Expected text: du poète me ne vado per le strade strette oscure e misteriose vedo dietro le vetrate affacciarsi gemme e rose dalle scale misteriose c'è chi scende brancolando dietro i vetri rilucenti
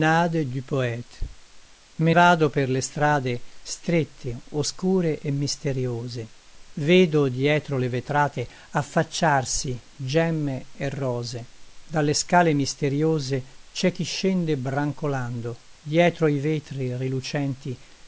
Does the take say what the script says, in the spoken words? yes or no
no